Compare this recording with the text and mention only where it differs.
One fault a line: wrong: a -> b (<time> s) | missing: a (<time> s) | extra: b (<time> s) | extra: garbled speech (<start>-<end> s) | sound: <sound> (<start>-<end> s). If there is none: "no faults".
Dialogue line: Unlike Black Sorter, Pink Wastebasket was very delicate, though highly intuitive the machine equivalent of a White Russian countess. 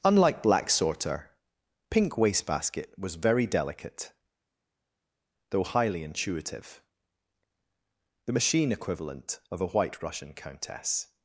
no faults